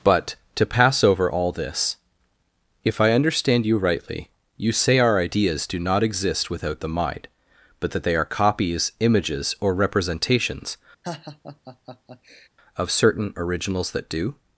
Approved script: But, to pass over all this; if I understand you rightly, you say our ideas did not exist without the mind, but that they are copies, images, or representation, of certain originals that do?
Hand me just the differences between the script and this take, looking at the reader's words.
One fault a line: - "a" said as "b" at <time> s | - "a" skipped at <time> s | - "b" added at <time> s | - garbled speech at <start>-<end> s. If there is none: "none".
- "did" said as "do" at 5.7 s
- "representation" said as "representations" at 9.7 s